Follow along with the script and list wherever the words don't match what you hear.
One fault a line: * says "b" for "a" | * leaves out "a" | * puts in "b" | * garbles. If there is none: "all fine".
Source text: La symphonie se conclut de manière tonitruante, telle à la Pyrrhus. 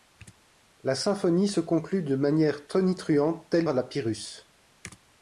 all fine